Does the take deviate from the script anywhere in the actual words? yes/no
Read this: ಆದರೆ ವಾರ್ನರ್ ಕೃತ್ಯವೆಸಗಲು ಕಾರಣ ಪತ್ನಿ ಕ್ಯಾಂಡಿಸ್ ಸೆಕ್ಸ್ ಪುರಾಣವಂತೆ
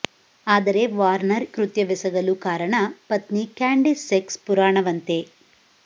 no